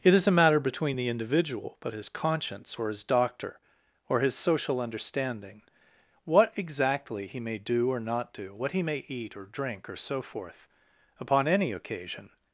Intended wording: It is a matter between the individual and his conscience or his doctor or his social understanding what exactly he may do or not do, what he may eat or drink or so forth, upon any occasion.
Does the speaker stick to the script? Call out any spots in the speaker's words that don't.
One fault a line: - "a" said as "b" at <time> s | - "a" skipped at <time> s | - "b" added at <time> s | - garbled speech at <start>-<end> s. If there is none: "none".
- "and" said as "but" at 1.8 s